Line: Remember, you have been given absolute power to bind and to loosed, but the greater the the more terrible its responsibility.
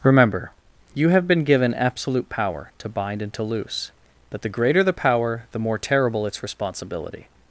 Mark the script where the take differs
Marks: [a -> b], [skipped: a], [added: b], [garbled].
Remember, you have been given absolute power to bind and to [loosed, -> loose] but the greater the [added: power] the more terrible its responsibility.